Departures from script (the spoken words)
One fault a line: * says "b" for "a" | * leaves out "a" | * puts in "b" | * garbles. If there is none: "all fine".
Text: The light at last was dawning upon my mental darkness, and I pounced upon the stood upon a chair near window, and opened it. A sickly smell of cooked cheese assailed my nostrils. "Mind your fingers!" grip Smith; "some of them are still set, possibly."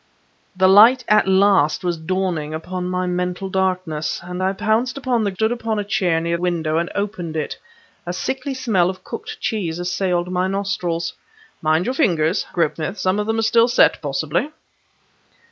all fine